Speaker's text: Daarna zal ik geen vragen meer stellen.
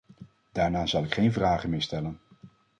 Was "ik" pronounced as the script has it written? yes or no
yes